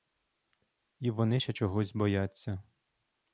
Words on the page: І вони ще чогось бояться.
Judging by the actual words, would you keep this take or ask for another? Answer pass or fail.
pass